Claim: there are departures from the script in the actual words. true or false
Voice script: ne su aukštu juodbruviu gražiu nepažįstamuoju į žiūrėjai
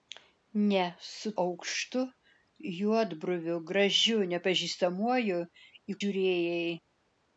false